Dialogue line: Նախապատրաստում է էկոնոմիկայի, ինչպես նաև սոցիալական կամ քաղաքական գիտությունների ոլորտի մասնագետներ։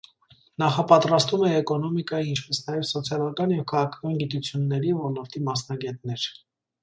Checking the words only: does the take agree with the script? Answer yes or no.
no